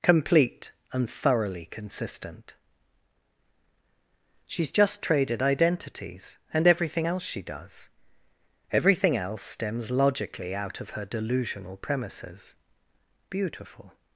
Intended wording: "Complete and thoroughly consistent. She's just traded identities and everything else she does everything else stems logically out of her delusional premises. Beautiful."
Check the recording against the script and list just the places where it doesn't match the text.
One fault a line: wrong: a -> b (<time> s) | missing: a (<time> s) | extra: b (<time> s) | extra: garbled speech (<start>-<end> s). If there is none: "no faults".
no faults